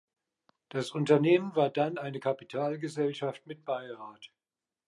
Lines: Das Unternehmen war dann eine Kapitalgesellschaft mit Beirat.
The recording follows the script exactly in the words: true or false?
true